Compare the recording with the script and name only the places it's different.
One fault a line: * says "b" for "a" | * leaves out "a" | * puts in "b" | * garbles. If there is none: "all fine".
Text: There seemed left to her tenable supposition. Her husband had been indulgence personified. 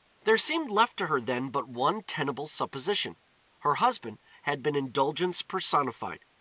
* puts in "then but one"